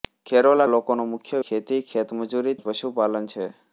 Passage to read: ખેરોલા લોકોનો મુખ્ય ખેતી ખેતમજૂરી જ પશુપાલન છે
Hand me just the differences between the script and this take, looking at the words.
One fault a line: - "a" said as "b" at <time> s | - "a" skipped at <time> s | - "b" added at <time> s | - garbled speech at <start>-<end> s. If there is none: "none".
none